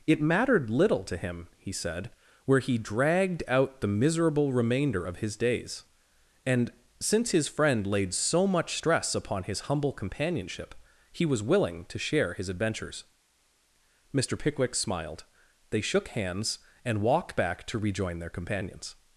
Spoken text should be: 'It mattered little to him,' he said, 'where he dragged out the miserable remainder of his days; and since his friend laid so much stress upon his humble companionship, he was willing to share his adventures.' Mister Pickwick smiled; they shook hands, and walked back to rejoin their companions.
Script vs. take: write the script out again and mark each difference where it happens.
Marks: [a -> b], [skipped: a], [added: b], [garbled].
'It mattered little to him,' he said, 'where he dragged out the miserable remainder of his days; and since his friend laid so much stress upon his humble companionship, he was willing to share his adventures.' Mister Pickwick smiled; they shook hands, and walked back to rejoin their companions.